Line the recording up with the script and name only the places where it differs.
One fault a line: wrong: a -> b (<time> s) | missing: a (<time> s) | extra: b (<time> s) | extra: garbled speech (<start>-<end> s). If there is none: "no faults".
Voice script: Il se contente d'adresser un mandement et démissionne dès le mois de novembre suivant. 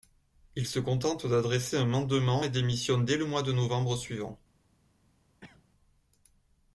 no faults